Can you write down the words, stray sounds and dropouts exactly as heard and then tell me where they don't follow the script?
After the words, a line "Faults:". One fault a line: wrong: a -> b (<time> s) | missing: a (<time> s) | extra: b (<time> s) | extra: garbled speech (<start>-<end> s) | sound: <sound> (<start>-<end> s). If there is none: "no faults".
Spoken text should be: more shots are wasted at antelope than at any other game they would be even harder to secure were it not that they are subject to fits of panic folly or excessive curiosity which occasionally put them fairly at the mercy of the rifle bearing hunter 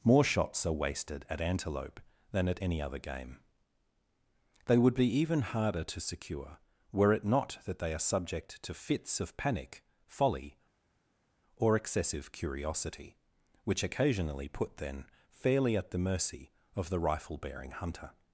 more shots are wasted at antelope than at any other game they would be even harder to secure were it not that they are subject to fits of panic folly or excessive curiosity which occasionally put then fairly at the mercy of the rifle bearing hunter
Faults:
wrong: them -> then (14.8 s)